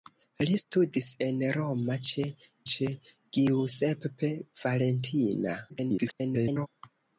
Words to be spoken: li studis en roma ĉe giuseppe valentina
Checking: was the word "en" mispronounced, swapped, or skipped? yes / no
no